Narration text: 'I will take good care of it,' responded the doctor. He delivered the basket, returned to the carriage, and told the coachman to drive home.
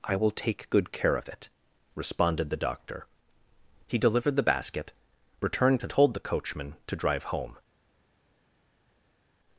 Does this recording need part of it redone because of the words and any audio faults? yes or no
yes